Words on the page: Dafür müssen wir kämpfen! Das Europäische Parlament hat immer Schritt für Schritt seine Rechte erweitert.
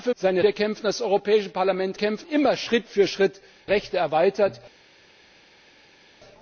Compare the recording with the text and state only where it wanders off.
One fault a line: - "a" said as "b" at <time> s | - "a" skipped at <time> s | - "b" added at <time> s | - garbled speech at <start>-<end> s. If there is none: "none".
- "müssen" said as "seine" at 0.2 s
- "hat" said as "kämpfen" at 2.0 s
- "seine" skipped at 3.4 s